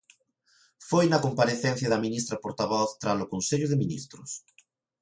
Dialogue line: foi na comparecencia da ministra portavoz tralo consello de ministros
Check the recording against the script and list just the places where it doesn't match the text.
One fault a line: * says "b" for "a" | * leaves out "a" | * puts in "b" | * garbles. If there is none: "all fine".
all fine